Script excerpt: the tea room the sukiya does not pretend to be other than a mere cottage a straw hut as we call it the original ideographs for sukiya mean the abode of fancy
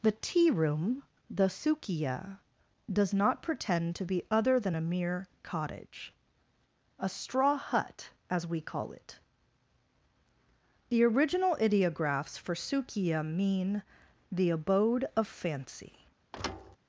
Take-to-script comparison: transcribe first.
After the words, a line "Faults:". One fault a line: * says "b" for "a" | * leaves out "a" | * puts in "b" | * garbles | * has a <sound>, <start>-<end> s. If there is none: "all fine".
the tea room the sukiya does not pretend to be other than a mere cottage a straw hut as we call it the original ideographs for sukiya mean the abode of fancy
Faults:
* has a thud, 16.3-16.8 s